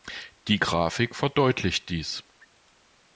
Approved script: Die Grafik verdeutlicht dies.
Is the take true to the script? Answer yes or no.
yes